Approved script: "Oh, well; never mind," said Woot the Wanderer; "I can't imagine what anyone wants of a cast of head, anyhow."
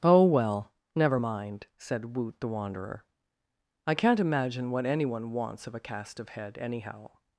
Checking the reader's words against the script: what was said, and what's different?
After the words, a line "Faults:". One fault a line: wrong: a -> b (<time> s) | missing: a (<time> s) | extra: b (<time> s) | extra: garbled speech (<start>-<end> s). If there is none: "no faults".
"Oh, well; never mind," said Woot the Wanderer; "I can't imagine what anyone wants of a cast of head, anyhow."
Faults:
no faults